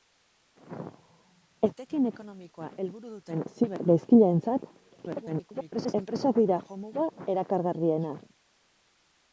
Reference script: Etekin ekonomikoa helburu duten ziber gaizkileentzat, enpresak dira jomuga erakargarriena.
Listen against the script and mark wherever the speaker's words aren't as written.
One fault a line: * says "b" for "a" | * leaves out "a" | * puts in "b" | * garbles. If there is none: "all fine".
* garbles